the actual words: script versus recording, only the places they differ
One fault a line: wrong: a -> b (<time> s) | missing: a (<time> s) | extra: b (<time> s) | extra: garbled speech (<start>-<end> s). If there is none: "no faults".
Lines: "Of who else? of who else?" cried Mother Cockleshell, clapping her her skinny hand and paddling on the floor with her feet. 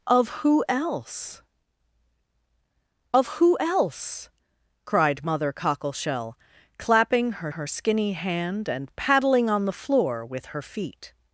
no faults